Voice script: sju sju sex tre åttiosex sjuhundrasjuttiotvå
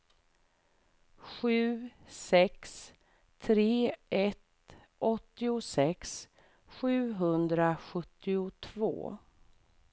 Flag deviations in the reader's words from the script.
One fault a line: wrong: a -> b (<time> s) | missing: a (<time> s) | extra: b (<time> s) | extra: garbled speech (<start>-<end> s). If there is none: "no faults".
missing: sju (1.9 s)
extra: ett (4.1 s)